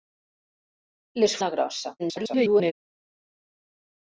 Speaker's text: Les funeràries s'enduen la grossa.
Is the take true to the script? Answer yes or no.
no